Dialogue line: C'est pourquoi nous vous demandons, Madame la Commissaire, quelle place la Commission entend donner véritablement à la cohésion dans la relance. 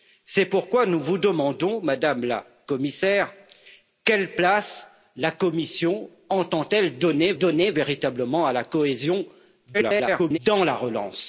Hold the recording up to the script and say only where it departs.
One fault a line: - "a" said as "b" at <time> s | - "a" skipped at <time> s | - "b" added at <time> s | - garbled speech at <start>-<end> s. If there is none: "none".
- "donner" added at 7.4 s
- garbled speech at 9.7-10.4 s